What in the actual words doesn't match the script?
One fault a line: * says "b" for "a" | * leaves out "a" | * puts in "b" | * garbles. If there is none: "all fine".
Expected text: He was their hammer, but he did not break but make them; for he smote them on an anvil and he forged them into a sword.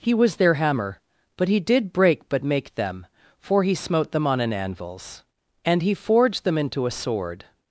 * leaves out "not"
* says "anvils" for "anvil"